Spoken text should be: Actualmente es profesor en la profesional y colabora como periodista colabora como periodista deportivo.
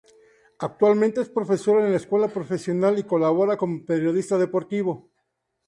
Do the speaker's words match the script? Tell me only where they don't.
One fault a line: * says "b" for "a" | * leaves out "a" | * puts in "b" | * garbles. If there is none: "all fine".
* puts in "escuela"
* leaves out "colabora como periodista"